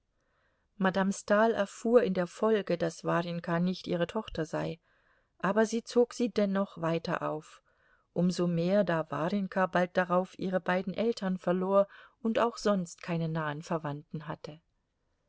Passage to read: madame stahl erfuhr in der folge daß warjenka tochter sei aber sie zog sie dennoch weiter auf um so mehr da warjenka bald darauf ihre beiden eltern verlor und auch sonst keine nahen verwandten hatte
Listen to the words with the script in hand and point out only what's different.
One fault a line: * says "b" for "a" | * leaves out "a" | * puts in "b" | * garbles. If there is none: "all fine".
* puts in "nicht ihre"